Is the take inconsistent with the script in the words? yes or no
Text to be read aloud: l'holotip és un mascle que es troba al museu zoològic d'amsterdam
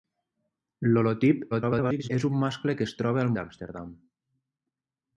yes